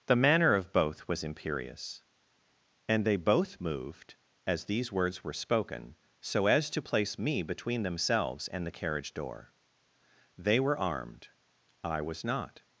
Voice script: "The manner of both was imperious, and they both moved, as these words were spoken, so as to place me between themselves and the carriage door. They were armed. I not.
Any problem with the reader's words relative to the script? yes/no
yes